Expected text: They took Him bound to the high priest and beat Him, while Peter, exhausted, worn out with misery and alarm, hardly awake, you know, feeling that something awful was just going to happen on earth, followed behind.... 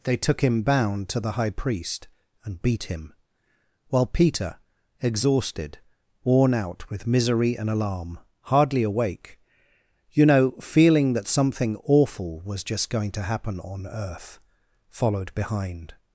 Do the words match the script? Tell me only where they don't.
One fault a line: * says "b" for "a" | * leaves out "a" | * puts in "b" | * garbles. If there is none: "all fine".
all fine